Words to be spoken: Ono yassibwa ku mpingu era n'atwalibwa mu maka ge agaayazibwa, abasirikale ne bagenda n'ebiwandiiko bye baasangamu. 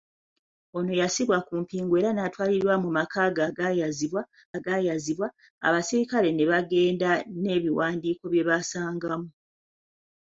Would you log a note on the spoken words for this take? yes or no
yes